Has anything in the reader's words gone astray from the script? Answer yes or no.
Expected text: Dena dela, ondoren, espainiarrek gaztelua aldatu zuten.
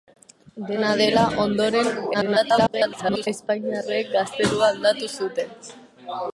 yes